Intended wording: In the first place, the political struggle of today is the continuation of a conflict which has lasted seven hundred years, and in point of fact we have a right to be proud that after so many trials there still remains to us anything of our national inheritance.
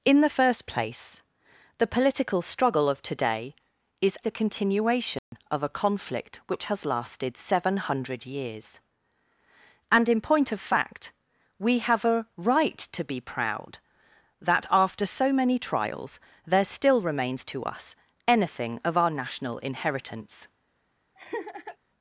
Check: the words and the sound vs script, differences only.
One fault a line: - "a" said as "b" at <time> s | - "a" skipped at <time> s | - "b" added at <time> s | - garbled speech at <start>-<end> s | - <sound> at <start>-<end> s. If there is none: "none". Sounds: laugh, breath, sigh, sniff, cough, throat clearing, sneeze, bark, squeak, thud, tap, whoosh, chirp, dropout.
- dropout at 5.2-5.3 s
- laugh at 21.2-21.8 s